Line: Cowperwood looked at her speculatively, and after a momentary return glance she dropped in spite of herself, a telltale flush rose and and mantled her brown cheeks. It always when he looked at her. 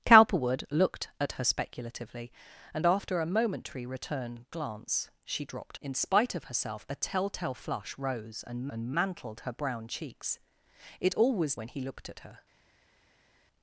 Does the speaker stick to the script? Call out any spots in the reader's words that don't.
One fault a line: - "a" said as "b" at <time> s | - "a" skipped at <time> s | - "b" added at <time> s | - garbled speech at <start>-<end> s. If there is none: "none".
none